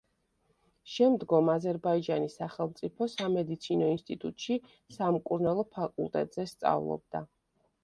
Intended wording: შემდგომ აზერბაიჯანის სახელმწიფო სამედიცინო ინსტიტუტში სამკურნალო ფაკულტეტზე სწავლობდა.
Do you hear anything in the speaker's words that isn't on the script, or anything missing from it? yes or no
no